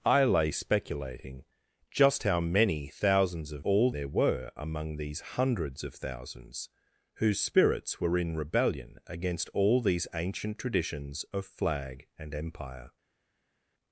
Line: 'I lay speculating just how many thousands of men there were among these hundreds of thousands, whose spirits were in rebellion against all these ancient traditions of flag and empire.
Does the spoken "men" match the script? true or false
false